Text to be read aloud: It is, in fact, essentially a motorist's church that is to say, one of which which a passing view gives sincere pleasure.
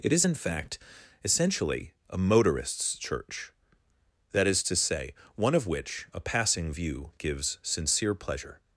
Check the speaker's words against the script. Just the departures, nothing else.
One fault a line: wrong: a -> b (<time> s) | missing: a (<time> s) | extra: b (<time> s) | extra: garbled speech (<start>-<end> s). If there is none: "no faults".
missing: which (6.1 s)